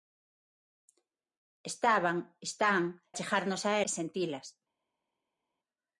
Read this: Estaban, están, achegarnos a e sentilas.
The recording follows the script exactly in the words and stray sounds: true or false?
true